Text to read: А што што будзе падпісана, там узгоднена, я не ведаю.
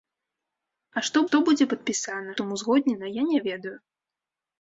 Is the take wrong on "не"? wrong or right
right